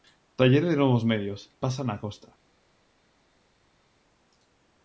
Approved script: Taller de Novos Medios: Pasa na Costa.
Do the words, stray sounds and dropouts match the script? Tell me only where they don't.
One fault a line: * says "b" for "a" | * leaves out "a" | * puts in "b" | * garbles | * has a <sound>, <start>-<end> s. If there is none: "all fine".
all fine